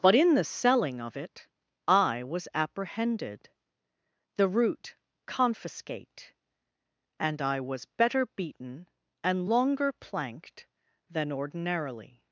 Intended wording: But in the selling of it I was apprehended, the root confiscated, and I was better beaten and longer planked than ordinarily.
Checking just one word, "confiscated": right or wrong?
wrong